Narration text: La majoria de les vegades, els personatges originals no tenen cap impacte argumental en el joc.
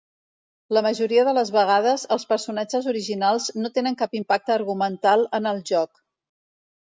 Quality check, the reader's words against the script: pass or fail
pass